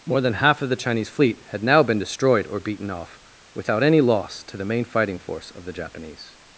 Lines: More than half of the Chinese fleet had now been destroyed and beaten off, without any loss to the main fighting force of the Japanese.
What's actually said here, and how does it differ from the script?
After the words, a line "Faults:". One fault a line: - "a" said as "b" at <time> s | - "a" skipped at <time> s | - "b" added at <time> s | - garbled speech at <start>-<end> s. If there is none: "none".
More than half of the Chinese fleet had now been destroyed or beaten off, without any loss to the main fighting force of the Japanese.
Faults:
- "and" said as "or" at 2.5 s